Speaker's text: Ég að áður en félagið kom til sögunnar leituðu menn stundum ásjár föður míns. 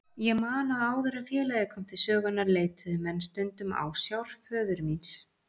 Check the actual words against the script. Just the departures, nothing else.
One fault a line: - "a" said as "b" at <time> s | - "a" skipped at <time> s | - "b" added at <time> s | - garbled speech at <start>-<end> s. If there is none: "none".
- "man" added at 0.4 s